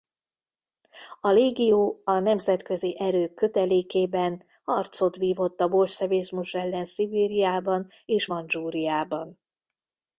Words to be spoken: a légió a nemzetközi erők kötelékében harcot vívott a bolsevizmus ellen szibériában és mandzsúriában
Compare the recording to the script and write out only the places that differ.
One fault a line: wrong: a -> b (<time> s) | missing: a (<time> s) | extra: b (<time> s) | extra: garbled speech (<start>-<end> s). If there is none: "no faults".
no faults